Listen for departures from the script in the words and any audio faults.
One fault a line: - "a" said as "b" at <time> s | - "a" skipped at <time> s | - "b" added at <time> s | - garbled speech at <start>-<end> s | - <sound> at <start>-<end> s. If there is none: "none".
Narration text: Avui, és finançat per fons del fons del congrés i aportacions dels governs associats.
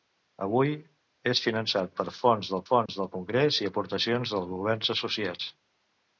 - dropout at 2.9-2.9 s